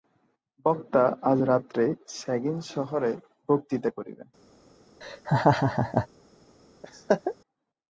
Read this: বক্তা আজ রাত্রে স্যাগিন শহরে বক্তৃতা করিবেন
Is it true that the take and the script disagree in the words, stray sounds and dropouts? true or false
true